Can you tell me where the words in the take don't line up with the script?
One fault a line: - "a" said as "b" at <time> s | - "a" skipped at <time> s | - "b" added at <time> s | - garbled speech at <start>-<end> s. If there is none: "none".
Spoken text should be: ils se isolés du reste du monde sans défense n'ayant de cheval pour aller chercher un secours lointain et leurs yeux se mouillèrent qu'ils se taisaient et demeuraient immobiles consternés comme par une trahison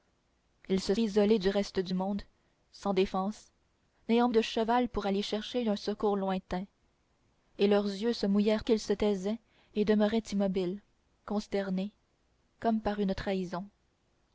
none